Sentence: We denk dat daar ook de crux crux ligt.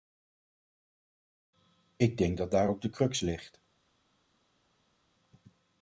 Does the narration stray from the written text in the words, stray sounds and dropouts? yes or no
yes